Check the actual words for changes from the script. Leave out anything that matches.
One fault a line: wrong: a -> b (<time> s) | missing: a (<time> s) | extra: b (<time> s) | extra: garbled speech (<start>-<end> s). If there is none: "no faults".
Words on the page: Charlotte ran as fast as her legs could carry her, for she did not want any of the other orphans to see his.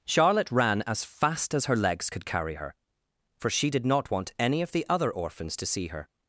wrong: his -> her (5.9 s)